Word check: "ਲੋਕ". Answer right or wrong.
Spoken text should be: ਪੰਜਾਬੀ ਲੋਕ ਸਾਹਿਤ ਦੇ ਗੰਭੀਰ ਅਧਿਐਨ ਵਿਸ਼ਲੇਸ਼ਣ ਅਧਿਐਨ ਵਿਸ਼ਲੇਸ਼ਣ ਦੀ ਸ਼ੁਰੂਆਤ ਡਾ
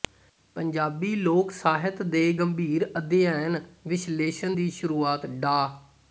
right